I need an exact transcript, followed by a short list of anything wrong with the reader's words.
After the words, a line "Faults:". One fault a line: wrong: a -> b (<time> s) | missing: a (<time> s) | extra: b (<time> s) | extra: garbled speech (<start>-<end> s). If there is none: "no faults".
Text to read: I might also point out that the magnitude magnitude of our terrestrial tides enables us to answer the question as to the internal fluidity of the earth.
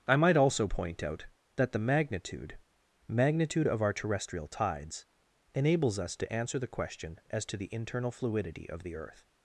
I might also point out that the magnitude magnitude of our terrestrial tides enables us to answer the question as to the internal fluidity of the earth.
Faults:
no faults